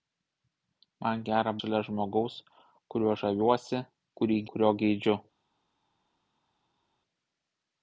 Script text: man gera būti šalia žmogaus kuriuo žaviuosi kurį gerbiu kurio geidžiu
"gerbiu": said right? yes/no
no